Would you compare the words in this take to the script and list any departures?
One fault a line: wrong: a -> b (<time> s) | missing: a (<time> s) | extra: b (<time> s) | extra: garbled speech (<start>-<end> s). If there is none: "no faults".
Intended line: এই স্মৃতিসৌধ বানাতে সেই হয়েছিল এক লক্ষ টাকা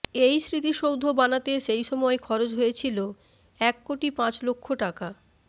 extra: সময় খরচ (1.8 s)
extra: কোটি পাঁচ (3.9 s)